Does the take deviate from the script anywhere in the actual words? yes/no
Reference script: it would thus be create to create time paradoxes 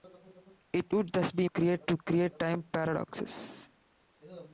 no